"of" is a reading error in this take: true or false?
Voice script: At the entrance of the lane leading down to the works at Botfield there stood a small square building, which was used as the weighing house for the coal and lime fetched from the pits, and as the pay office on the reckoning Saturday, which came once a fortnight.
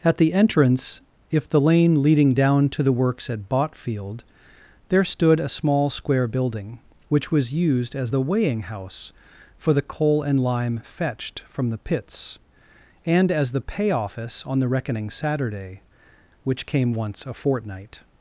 true